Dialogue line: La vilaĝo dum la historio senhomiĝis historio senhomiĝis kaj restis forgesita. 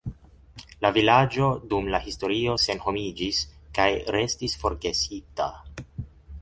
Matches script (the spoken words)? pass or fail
fail